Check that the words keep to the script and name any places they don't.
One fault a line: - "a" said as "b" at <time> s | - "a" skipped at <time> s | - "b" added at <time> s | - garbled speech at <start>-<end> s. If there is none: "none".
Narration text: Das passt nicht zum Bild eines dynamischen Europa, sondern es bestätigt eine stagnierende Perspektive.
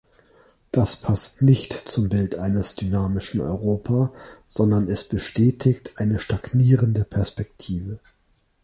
none